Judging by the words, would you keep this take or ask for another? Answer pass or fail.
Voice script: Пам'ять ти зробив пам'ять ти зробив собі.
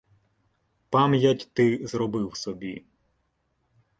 fail